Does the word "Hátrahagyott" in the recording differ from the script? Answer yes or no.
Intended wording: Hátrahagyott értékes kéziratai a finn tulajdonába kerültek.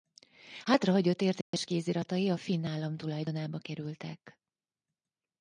no